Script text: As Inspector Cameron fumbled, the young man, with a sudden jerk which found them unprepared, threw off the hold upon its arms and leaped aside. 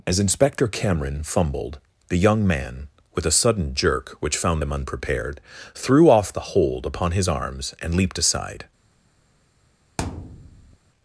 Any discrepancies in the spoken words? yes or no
yes